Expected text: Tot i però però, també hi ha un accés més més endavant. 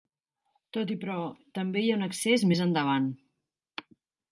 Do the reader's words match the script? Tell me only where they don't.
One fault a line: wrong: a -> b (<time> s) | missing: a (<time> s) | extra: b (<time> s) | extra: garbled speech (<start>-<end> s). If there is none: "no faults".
missing: però (1.2 s)
missing: més (2.6 s)